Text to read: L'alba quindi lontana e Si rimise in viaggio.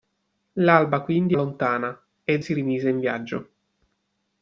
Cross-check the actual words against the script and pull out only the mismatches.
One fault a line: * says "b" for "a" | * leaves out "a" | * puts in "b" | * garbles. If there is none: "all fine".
all fine